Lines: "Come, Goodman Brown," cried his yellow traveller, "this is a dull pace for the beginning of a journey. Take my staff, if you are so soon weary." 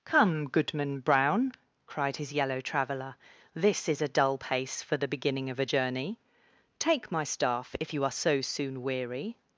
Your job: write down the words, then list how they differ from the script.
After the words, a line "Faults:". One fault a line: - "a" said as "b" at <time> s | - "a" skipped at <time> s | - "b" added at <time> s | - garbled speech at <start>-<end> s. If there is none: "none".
"Come, Goodman Brown," cried his yellow traveller, "this is a dull pace for the beginning of a journey. Take my staff, if you are so soon weary."
Faults:
none